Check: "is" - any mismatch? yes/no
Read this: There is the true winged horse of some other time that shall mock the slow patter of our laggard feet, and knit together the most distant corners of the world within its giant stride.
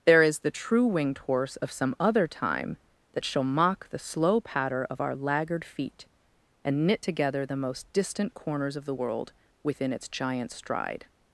no